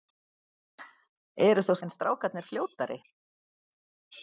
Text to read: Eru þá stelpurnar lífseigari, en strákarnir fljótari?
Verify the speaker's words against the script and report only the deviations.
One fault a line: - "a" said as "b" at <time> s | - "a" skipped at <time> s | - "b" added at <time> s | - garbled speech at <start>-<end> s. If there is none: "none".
- "stelpurnar lífseigari" skipped at 1.8 s